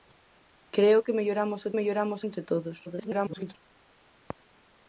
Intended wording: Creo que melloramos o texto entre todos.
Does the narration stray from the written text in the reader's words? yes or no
yes